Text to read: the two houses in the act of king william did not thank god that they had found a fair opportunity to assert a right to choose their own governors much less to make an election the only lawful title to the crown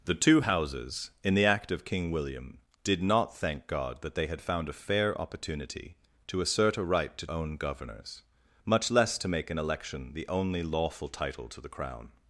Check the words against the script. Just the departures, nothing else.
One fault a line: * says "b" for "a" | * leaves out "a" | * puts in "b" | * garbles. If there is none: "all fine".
* leaves out "choose their"